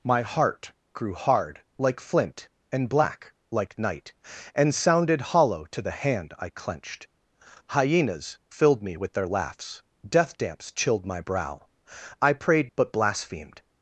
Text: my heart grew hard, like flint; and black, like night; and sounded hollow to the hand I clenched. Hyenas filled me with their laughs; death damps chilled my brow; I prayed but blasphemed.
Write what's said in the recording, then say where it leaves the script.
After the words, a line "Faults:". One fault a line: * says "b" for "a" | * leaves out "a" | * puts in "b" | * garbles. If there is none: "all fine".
my heart grew hard, like flint; and black, like night; and sounded hollow to the hand I clenched. Hyenas filled me with their laughs; death damps chilled my brow; I prayed but blasphemed.
Faults:
all fine